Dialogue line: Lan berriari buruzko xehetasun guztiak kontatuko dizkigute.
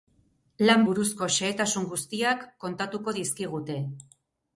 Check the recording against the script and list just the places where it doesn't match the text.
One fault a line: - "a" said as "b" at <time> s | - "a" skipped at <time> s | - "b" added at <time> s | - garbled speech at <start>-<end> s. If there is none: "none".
- "berriari" skipped at 0.8 s